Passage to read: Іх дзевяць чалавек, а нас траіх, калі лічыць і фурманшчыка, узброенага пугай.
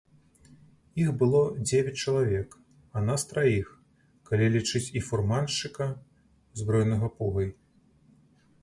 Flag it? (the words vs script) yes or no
yes